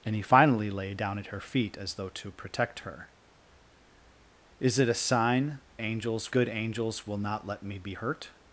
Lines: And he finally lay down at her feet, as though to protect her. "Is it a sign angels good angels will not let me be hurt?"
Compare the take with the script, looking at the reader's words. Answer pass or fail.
pass